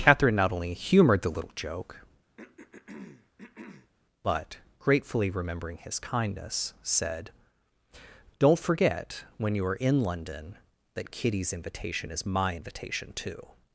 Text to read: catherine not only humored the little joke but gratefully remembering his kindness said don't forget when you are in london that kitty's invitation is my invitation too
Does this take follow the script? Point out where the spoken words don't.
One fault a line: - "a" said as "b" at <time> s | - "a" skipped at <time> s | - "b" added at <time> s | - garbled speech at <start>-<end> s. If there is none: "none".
none